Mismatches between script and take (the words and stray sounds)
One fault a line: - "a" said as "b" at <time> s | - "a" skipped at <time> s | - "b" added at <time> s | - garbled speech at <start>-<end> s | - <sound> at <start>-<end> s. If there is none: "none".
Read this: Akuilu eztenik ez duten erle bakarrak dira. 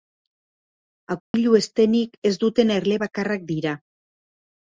- dropout at 1.2-1.3 s